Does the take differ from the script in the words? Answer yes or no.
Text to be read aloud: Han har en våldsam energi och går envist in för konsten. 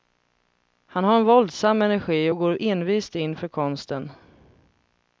no